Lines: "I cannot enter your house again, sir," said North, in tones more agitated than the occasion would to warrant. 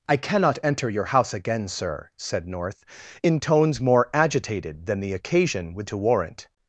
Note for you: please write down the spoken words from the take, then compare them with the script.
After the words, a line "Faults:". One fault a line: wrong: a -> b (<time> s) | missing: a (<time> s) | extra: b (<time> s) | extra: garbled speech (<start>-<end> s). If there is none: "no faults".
"I cannot enter your house again, sir," said North, in tones more agitated than the occasion would to warrant.
Faults:
no faults